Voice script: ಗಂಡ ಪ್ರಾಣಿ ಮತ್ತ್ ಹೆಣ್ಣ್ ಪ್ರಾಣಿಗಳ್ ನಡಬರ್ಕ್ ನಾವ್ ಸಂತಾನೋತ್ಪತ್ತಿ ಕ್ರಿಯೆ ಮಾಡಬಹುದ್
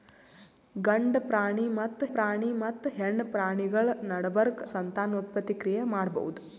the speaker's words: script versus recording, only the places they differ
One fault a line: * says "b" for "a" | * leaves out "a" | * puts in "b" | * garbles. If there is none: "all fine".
* puts in "ಪ್ರಾಣಿ ಮತ್ತ್"
* leaves out "ನಾವ್"